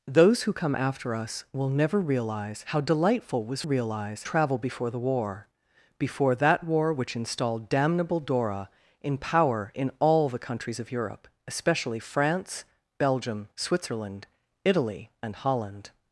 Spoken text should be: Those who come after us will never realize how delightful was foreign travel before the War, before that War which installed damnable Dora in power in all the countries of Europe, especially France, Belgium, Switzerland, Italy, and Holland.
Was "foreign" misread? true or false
true